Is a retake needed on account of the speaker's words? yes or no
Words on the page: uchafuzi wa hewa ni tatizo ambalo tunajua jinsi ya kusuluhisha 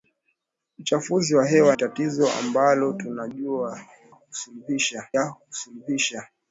yes